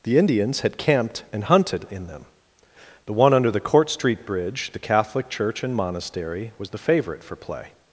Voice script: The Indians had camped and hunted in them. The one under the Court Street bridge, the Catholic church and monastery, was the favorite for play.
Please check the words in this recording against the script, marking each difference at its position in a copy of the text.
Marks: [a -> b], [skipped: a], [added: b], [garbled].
The Indians had camped and hunted in them. The one under the Court Street bridge, the Catholic church and monastery, was the favorite for play.